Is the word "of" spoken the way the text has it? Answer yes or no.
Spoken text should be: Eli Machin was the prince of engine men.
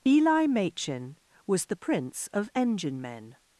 yes